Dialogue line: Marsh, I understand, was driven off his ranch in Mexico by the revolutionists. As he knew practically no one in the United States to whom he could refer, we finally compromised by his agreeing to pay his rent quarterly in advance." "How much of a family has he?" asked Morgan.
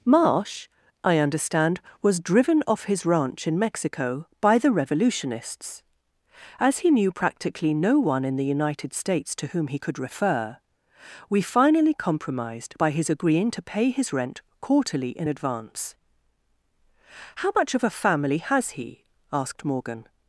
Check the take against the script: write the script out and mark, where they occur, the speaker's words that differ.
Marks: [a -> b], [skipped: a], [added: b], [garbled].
Marsh, I understand, was driven off his ranch in Mexico by the revolutionists. As he knew practically no one in the United States to whom he could refer, we finally compromised by his agreeing to pay his rent quarterly in advance." "How much of a family has he?" asked Morgan.